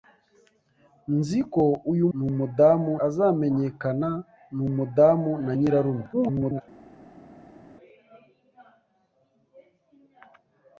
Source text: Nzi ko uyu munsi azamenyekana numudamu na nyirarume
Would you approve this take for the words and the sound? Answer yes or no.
no